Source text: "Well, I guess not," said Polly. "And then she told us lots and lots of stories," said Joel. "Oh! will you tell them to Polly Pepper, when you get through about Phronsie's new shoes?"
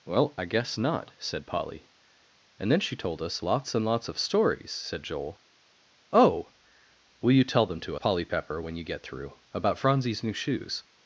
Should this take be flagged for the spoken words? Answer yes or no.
no